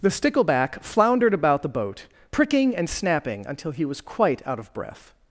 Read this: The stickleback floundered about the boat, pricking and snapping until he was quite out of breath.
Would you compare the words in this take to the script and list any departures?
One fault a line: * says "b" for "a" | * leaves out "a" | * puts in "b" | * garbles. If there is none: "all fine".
all fine